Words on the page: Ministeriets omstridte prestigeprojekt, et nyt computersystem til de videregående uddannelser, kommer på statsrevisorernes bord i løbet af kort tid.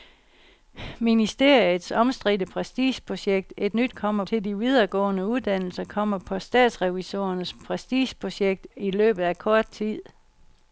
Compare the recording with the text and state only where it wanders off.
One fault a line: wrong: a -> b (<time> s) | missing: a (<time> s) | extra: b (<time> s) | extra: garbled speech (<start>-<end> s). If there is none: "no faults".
wrong: computersystem -> kommer (3.9 s)
wrong: bord -> prestigeprojekt (7.6 s)